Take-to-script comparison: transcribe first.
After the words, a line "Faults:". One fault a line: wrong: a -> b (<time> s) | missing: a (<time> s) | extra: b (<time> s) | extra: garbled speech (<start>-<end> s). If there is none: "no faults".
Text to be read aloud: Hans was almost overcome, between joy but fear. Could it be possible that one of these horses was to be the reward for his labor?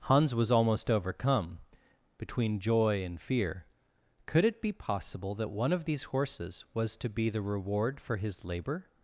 Hans was almost overcome, between joy and fear. Could it be possible that one of these horses was to be the reward for his labor?
Faults:
wrong: but -> and (3.0 s)